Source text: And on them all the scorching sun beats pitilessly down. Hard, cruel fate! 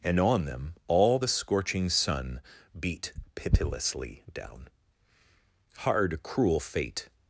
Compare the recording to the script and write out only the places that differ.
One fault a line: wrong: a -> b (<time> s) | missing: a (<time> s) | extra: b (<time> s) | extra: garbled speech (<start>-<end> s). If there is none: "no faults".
wrong: beats -> beat (2.8 s)